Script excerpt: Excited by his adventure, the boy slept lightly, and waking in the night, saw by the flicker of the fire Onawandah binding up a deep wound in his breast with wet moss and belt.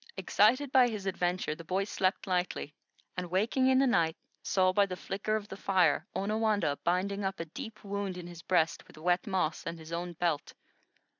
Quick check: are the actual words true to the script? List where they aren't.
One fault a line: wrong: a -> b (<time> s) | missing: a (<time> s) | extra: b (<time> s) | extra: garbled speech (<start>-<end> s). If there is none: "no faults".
extra: his own (9.8 s)